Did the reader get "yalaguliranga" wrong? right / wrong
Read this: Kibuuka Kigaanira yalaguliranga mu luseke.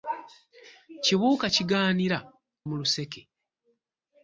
wrong